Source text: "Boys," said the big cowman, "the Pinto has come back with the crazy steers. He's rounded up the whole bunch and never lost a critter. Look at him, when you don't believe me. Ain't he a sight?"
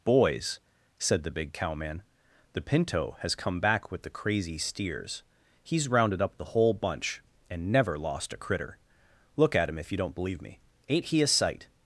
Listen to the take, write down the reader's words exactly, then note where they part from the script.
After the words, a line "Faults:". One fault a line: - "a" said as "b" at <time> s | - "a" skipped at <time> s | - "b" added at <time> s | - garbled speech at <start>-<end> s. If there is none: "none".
"Boys," said the big cowman, "the Pinto has come back with the crazy steers. He's rounded up the whole bunch and never lost a critter. Look at him, if you don't believe me. Ain't he a sight?"
Faults:
- "when" said as "if" at 9.8 s